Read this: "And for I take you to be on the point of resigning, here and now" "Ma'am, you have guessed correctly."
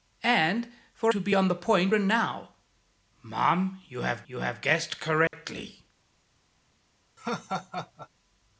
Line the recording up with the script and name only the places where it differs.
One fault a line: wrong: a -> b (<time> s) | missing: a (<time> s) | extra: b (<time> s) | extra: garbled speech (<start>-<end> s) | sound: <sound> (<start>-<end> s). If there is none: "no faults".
missing: I take you (1.1 s)
missing: of resigning here (1.9 s)
extra: you have (4.3 s)
sound: dropout (5.3-5.3 s)
sound: laugh (7.2-8.1 s)